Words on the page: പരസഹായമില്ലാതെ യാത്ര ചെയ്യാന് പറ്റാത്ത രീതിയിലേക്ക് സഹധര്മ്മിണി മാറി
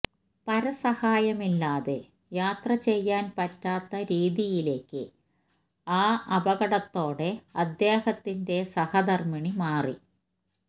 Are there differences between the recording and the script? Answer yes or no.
yes